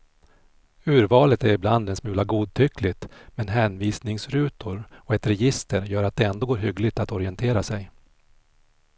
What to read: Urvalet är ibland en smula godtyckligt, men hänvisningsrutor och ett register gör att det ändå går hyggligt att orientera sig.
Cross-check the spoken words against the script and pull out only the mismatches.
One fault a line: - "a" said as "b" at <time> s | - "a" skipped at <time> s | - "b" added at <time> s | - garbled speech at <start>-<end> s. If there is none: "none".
none